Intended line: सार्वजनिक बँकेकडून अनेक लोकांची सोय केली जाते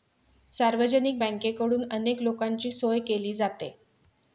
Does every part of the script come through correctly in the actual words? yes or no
yes